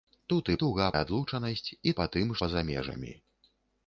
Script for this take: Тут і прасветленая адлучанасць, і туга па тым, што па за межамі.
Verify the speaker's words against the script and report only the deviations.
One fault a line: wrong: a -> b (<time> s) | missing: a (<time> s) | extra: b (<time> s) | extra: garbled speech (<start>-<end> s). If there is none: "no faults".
wrong: прасветленая -> туга (0.6 s)
missing: туга (2.0 s)
missing: што (2.3 s)